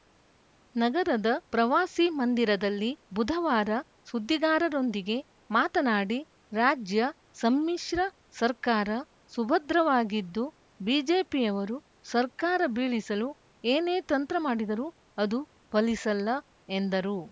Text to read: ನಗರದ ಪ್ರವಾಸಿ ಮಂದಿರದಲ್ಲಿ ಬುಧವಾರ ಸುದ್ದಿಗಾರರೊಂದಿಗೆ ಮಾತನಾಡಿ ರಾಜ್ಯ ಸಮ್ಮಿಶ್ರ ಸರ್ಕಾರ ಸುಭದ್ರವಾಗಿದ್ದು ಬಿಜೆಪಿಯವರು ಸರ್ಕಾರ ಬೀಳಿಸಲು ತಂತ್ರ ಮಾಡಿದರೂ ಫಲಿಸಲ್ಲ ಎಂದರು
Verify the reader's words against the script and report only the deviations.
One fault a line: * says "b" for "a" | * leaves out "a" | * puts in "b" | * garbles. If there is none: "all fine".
* puts in "ಏನೇ"
* puts in "ಅದು"